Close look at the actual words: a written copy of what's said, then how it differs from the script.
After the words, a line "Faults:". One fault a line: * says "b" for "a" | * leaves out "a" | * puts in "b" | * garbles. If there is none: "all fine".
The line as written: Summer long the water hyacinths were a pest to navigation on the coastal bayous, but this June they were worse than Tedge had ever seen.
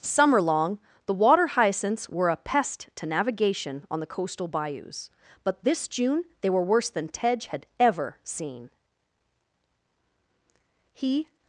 Summer long the water hyacinths were a pest to navigation on the coastal bayous, but this June they were worse than Tedge had ever seen. He
Faults:
* puts in "He"